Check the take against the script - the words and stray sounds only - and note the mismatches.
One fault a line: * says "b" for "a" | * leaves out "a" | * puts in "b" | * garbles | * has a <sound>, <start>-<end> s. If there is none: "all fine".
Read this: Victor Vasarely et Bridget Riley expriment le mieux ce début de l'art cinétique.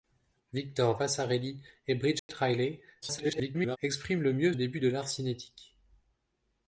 * has a dropout, 2.2-2.3 s
* garbles
* leaves out "ce"